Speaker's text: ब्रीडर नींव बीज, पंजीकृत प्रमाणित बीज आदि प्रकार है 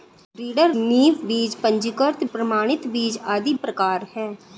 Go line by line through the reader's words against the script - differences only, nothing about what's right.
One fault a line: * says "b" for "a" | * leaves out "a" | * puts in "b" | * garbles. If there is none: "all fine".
all fine